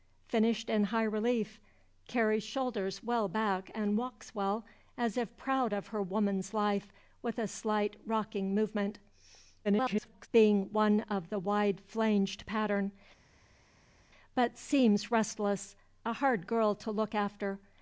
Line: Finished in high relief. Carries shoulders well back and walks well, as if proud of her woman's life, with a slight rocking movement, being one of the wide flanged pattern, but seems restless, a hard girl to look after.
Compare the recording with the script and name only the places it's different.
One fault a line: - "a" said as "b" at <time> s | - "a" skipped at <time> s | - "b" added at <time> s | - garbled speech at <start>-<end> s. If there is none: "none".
- garbled speech at 9.6-10.3 s